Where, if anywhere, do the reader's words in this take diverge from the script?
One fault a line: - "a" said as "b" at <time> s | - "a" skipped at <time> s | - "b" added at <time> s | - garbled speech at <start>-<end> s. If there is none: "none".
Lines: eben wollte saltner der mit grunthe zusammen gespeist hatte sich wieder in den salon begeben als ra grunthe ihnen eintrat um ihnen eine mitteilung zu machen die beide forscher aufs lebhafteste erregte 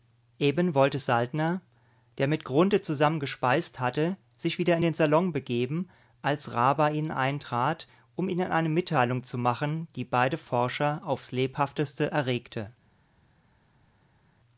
- "grunthe" said as "bei" at 6.7 s